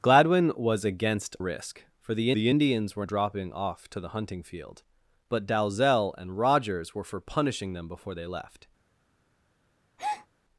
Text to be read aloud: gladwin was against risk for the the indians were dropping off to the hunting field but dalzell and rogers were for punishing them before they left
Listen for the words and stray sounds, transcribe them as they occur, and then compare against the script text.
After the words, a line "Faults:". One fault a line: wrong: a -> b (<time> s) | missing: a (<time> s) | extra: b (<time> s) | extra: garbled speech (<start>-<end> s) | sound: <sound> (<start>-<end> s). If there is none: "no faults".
gladwin was against risk for the the indians were dropping off to the hunting field but dalzell and rogers were for punishing them before they left
Faults:
sound: breath (10.0-10.3 s)